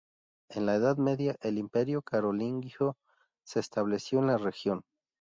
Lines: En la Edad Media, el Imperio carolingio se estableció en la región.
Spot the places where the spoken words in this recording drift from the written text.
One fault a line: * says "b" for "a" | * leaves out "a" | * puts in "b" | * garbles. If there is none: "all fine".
all fine